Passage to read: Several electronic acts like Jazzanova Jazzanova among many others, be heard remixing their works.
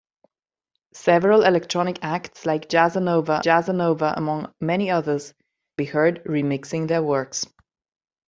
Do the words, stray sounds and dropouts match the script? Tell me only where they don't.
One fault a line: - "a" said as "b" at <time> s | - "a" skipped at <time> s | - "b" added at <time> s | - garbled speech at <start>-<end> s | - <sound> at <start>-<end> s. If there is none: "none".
none